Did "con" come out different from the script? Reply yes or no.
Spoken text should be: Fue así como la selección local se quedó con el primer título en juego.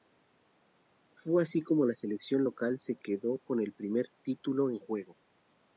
no